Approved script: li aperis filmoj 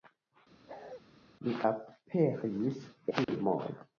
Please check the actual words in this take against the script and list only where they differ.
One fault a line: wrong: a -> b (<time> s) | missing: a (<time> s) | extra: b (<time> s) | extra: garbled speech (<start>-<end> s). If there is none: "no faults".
no faults